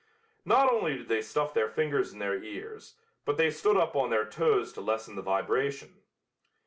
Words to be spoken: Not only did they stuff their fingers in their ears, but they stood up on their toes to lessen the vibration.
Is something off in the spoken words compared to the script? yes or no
no